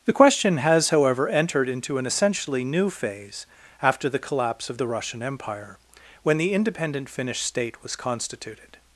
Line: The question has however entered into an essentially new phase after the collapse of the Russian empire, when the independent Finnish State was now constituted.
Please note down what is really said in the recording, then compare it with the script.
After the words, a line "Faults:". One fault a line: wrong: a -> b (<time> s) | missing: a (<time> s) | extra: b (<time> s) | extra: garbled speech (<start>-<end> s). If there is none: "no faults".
The question has however entered into an essentially new phase after the collapse of the Russian empire, when the independent Finnish State was constituted.
Faults:
missing: now (8.0 s)